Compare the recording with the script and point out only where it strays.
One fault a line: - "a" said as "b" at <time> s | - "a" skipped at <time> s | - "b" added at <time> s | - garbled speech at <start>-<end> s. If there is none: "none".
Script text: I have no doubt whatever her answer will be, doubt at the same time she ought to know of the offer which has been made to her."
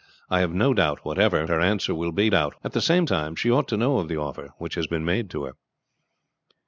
none